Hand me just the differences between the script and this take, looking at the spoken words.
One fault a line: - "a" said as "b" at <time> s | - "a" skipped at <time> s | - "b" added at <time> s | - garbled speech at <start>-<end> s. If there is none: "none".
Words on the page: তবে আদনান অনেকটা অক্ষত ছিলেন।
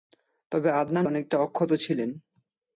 none